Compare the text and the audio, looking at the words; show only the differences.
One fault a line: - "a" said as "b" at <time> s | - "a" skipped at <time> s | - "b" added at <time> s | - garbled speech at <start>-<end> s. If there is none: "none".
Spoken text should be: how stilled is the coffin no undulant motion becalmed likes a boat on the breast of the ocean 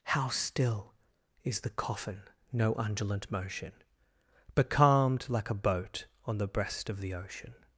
- "stilled" said as "still" at 0.3 s
- "likes" said as "like" at 5.3 s